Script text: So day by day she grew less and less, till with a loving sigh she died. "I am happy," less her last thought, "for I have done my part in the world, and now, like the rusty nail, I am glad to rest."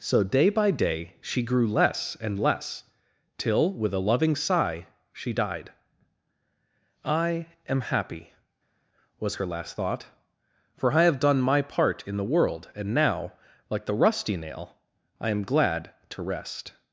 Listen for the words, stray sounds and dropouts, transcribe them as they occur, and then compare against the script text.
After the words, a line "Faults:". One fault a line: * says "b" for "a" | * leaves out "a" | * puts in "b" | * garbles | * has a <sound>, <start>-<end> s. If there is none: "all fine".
So day by day she grew less and less, till with a loving sigh she died. "I am happy," was her last thought, "for I have done my part in the world, and now, like the rusty nail, I am glad to rest."
Faults:
* says "was" for "less"